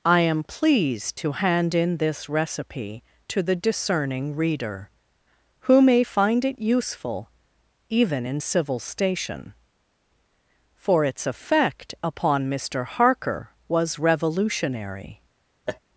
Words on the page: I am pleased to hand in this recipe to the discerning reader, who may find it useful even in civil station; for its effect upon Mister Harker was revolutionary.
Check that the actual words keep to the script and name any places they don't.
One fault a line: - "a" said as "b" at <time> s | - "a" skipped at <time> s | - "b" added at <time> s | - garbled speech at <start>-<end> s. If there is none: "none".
none